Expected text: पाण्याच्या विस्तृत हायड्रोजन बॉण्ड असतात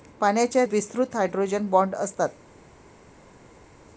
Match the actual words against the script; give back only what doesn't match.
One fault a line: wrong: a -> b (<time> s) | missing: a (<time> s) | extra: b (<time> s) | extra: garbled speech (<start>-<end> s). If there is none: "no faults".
no faults